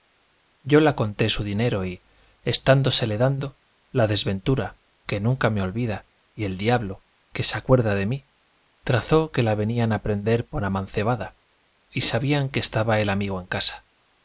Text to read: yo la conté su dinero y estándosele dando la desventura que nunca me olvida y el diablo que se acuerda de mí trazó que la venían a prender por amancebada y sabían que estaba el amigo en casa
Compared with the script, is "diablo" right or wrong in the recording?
right